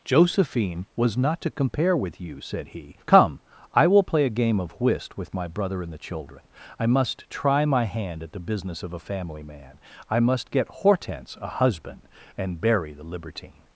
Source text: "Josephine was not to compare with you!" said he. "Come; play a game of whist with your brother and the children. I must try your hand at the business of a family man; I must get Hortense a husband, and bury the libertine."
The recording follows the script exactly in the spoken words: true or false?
false